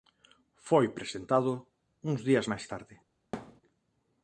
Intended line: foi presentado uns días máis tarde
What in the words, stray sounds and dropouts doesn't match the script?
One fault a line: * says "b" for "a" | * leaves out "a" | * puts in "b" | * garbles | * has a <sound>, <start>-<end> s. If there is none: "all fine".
* has a thud, 3.3-3.6 s